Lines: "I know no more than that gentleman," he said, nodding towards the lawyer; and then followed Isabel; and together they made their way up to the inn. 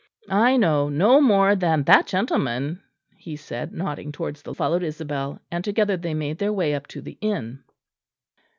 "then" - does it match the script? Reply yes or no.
no